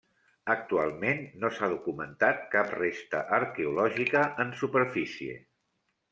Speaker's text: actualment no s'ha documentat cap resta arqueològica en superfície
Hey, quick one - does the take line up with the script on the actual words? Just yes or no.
yes